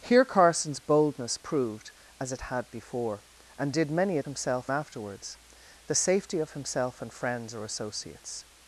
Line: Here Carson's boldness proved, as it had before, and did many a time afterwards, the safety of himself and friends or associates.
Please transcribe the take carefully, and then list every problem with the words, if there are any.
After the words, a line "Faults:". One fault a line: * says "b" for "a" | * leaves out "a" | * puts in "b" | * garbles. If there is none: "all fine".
Here Carson's boldness proved, as it had before, and did many a himself afterwards, the safety of himself and friends or associates.
Faults:
* says "himself" for "time"